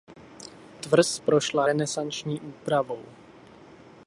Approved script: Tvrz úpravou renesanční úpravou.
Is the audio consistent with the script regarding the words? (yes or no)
no